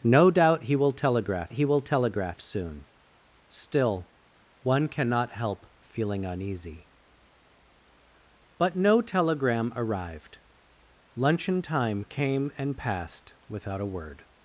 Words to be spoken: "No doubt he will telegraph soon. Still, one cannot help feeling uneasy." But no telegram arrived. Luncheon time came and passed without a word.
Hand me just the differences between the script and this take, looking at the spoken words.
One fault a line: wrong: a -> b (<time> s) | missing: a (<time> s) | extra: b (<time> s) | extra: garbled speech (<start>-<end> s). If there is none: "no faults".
extra: he will telegraph (1.5 s)